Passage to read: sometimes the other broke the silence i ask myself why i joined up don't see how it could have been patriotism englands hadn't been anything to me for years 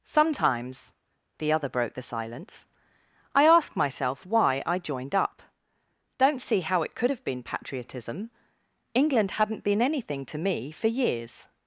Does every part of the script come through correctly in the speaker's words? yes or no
no